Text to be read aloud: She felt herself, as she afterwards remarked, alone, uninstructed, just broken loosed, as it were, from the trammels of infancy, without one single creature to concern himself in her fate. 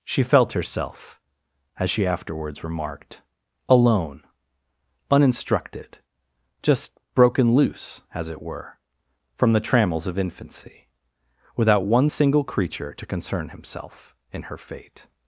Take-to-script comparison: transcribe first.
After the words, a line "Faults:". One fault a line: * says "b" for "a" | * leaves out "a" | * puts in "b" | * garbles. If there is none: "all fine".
She felt herself, as she afterwards remarked, alone, uninstructed, just broken loose, as it were, from the trammels of infancy, without one single creature to concern himself in her fate.
Faults:
* says "loose" for "loosed"